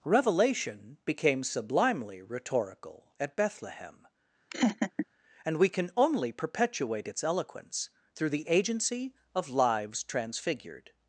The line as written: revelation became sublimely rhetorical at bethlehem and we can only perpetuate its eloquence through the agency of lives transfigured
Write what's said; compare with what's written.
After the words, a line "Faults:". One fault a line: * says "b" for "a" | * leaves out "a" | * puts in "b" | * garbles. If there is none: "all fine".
revelation became sublimely rhetorical at bethlehem and we can only perpetuate its eloquence through the agency of lives transfigured
Faults:
all fine